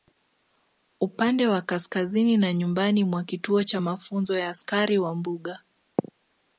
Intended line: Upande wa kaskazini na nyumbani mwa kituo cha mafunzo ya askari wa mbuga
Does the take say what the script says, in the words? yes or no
yes